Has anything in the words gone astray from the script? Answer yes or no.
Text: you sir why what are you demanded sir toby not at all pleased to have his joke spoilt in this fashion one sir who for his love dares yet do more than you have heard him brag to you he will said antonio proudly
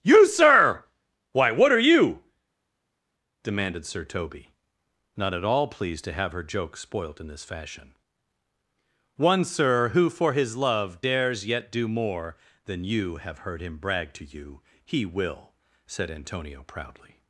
yes